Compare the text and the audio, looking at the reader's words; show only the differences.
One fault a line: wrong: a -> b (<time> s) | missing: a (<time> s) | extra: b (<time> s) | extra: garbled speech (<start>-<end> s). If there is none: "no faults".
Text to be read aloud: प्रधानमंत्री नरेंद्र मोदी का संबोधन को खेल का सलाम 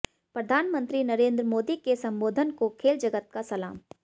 wrong: का -> के (1.8 s)
extra: जगत (3.0 s)